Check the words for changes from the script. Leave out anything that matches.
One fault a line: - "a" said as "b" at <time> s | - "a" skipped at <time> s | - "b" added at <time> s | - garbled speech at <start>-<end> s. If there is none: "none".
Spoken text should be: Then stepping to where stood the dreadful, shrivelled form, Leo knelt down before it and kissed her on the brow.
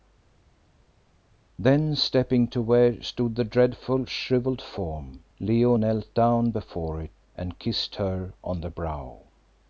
none